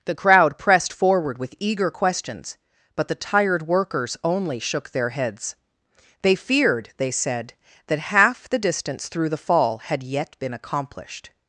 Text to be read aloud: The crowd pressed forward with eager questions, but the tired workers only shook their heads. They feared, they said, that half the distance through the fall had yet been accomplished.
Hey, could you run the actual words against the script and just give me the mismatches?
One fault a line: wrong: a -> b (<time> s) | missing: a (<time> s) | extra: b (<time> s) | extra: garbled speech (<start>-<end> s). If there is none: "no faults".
no faults